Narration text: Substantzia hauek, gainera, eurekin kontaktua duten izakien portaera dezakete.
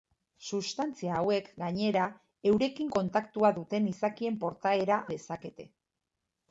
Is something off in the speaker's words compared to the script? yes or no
no